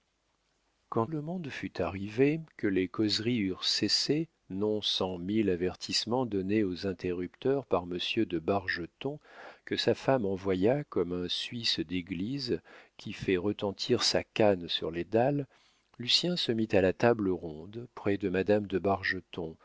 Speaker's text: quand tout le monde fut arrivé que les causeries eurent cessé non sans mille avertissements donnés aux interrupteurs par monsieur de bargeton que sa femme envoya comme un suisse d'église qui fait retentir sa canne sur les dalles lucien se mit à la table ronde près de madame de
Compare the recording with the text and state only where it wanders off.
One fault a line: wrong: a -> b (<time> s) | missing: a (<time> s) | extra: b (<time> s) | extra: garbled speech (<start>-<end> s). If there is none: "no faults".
missing: tout (1.1 s)